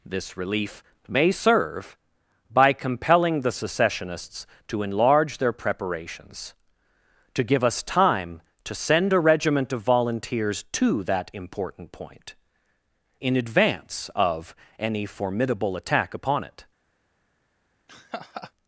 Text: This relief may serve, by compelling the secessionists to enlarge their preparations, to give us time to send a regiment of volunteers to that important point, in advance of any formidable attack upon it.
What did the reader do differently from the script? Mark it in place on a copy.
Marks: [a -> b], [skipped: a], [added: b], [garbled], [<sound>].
This relief may serve, by compelling the secessionists to enlarge their preparations, to give us time to send a regiment of volunteers to that important point, in advance of any formidable attack upon it. [laugh]